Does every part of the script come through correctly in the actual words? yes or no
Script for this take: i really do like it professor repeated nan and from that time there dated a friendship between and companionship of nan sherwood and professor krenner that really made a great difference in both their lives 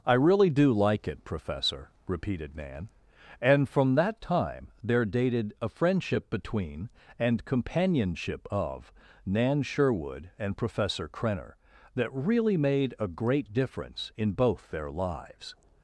yes